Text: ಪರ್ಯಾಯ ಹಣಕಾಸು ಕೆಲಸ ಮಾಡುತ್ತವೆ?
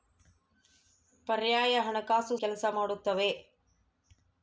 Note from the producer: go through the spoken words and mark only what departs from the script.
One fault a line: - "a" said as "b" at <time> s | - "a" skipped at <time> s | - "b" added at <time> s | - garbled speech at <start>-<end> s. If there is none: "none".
none